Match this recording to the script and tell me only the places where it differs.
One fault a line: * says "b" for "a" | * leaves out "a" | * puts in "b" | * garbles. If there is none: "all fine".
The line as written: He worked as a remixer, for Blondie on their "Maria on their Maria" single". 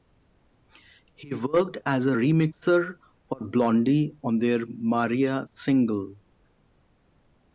* leaves out "on their Maria"